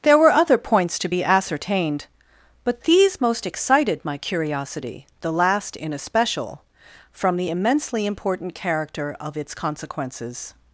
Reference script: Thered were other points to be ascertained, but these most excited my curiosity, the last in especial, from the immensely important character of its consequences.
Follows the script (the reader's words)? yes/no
no